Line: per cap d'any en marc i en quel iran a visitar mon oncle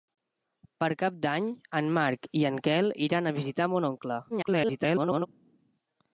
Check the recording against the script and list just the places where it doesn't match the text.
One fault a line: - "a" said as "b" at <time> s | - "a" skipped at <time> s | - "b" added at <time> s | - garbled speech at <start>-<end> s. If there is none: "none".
- garbled speech at 4.3-5.3 s